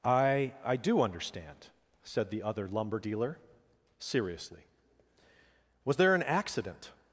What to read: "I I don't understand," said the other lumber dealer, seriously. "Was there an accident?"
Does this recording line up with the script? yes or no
no